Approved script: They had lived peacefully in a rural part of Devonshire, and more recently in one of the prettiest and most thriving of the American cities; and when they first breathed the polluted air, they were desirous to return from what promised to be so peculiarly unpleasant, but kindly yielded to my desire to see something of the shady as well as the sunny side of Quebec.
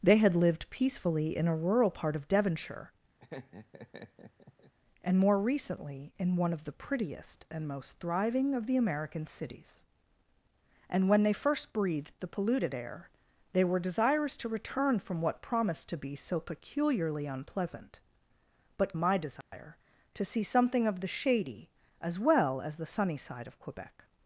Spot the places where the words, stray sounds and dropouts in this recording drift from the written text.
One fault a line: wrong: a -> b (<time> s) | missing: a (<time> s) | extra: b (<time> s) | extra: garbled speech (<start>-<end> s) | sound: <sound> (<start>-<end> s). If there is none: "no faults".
sound: laugh (3.2-4.7 s)
missing: kindly yielded to (19.0 s)
sound: dropout (19.4-19.5 s)